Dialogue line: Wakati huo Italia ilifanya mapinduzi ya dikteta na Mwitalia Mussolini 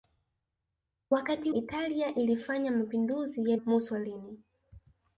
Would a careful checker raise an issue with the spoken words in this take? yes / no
yes